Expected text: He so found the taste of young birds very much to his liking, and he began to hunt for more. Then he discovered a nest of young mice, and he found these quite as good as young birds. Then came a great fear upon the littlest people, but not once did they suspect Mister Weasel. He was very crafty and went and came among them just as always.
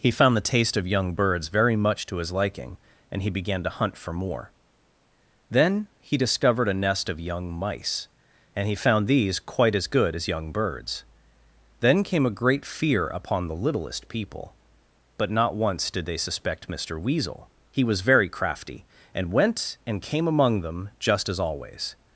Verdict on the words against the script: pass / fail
fail